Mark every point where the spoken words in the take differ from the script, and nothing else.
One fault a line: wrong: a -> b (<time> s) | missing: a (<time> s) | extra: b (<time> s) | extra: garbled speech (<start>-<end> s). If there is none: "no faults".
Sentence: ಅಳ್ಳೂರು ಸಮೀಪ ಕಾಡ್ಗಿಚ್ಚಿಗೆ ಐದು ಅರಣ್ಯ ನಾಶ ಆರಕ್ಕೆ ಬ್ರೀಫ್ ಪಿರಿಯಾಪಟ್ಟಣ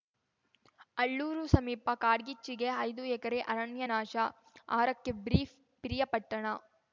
extra: ಎಕರೆ (3.1 s)